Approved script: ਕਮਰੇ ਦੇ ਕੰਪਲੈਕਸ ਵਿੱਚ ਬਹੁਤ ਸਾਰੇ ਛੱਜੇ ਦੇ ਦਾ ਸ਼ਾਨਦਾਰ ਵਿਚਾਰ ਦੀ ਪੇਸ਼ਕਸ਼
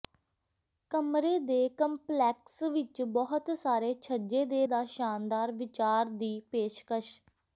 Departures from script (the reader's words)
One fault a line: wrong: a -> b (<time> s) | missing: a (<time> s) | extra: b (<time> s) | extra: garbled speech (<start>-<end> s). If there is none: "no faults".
no faults